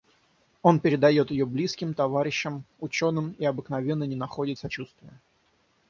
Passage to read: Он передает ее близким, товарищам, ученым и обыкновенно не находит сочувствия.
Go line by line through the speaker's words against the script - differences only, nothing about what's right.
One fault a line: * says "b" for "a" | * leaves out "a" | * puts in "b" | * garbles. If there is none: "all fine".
all fine